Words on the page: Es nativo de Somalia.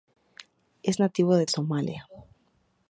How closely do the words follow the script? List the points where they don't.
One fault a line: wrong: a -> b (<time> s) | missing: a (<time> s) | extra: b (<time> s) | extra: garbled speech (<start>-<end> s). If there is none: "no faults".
no faults